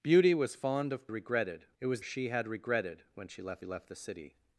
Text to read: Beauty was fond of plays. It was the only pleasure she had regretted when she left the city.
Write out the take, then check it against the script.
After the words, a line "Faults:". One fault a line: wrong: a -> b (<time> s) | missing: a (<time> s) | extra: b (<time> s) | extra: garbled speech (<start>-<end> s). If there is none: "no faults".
Beauty was fond of regretted. It was she had regretted when she left left the city.
Faults:
wrong: plays -> regretted (1.1 s)
missing: the only pleasure (2.0 s)
extra: left (3.6 s)